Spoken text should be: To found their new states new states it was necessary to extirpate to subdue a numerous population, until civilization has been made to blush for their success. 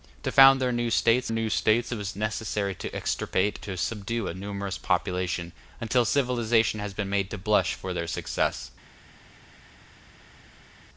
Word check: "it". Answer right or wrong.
right